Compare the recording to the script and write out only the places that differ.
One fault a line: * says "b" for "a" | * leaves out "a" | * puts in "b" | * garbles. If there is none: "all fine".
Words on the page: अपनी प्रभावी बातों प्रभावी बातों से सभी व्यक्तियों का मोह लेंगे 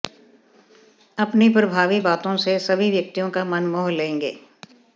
* leaves out "प्रभावी बातों"
* puts in "मन"